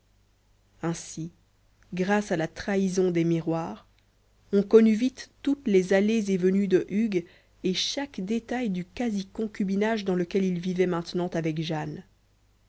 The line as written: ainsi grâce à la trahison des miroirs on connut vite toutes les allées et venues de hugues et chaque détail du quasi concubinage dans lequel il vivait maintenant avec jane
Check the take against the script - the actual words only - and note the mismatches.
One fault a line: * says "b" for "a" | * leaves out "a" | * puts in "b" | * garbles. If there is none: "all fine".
all fine